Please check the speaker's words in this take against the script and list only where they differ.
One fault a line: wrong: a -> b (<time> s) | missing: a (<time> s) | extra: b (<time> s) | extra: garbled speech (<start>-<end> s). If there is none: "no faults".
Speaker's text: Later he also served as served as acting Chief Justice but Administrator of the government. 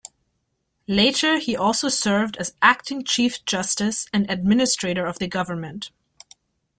missing: served as (2.5 s)
wrong: but -> and (4.1 s)